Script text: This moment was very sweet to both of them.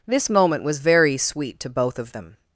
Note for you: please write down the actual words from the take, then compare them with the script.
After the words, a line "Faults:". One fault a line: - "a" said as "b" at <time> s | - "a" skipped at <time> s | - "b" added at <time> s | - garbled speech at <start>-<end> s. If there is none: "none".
This moment was very sweet to both of them.
Faults:
none